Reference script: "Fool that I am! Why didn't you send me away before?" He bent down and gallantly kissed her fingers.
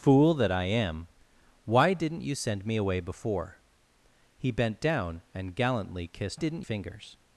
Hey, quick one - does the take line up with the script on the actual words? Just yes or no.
no